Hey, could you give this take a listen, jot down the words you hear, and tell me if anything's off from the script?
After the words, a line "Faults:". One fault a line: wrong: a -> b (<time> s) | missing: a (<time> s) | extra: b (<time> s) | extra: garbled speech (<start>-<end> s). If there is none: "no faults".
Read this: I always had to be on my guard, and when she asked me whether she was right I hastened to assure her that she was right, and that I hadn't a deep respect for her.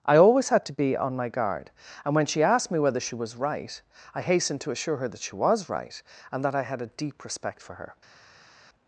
I always had to be on my guard, and when she asked me whether she was right I hastened to assure her that she was right, and that I had a deep respect for her.
Faults:
wrong: hadn't -> had (6.6 s)